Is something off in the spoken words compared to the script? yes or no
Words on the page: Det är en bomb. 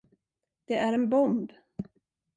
no